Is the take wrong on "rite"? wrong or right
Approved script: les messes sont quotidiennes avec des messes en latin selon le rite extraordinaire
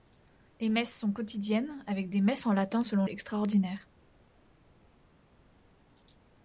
wrong